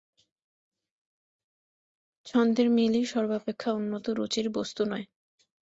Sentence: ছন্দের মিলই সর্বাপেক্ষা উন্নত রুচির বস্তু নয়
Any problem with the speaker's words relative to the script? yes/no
no